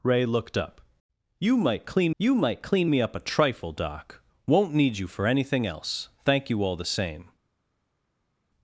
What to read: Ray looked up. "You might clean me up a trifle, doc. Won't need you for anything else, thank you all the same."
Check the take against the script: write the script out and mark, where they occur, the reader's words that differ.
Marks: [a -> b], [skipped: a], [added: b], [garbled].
Ray looked up. "You might clean [added: you might clean] me up a trifle, doc. Won't need you for anything else, thank you all the same."